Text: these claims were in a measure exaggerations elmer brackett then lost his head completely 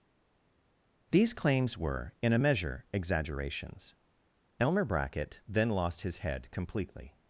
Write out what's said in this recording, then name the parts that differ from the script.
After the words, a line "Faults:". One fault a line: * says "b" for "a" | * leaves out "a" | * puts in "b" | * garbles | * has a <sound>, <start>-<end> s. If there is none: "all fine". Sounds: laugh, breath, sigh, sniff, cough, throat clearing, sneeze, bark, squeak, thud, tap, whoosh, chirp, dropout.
these claims were in a measure exaggerations elmer brackett then lost his head completely
Faults:
all fine